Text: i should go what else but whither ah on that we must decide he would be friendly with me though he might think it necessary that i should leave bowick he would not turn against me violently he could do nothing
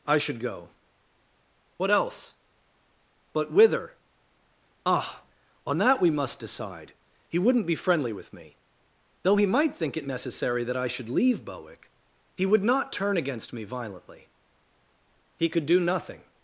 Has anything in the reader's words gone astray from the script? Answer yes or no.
yes